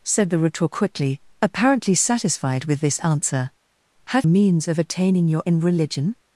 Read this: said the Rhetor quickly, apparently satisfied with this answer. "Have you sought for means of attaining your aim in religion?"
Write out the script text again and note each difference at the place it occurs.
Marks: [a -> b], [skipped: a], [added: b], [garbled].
said the Rhetor quickly, apparently satisfied with this answer. "Have [skipped: you sought for] means of attaining your [skipped: aim] in religion?"